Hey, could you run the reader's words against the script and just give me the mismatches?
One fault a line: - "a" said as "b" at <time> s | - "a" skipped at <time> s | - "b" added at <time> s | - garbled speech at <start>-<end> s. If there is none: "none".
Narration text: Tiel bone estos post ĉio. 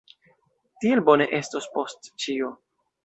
none